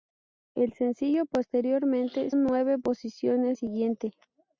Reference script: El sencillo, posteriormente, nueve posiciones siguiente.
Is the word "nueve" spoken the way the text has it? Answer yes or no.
yes